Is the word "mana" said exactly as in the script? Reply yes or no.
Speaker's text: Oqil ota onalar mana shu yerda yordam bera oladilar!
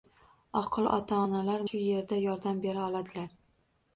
no